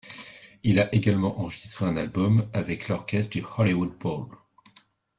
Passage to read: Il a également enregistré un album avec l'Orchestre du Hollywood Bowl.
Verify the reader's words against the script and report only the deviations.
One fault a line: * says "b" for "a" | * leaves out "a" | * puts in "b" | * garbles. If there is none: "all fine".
all fine